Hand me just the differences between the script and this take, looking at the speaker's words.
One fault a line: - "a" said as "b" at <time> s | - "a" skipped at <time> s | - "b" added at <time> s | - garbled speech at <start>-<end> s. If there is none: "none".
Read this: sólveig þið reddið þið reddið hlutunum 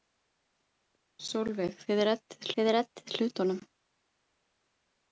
none